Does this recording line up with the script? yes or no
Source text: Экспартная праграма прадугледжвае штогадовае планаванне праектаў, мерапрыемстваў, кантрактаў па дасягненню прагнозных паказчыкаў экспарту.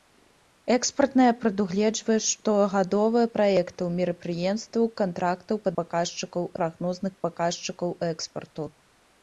no